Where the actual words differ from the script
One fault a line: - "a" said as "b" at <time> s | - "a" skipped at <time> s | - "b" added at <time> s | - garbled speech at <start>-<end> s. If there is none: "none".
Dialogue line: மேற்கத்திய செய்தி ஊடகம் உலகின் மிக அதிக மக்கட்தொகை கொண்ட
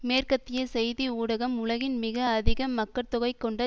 none